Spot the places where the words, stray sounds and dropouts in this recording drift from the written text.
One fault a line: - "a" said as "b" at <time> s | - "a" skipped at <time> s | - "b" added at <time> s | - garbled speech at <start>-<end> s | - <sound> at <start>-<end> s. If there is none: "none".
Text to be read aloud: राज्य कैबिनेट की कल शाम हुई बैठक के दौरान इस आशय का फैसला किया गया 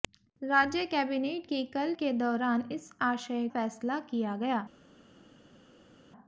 - "शाम हुई बैठक" skipped at 1.9 s
- "का" skipped at 3.5 s